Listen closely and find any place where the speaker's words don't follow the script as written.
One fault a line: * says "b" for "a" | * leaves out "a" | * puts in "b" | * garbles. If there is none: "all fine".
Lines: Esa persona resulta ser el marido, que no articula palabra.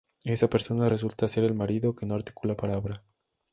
all fine